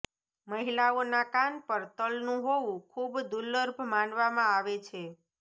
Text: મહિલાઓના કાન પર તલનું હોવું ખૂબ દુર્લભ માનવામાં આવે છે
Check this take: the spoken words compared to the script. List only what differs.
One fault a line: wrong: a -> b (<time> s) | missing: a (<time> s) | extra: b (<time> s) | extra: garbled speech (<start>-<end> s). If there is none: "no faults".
no faults